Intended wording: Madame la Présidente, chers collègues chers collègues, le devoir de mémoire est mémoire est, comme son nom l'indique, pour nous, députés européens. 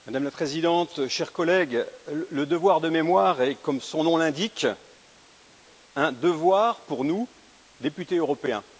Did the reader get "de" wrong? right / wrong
right